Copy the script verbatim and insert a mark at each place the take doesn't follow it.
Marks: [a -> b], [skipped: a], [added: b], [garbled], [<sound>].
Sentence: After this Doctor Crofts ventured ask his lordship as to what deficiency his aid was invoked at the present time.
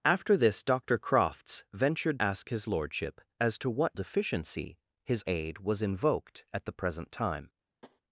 After this Doctor Crofts ventured ask his lordship as to what deficiency his aid was invoked at the present time. [tap]